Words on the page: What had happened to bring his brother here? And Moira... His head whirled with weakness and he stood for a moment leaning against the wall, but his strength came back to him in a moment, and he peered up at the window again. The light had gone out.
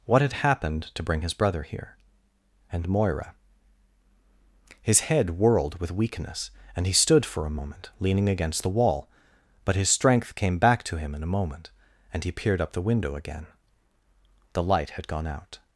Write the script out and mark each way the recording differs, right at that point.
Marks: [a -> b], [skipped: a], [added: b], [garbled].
What had happened to bring his brother here? And Moira... His head whirled with weakness and he stood for a moment leaning against the wall, but his strength came back to him in a moment, and he peered up [skipped: at] the window again. The light had gone out.